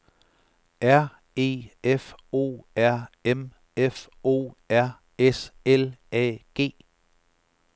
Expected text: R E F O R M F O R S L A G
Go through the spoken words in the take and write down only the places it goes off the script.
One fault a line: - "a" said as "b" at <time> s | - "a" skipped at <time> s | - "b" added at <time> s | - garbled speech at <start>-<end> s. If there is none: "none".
none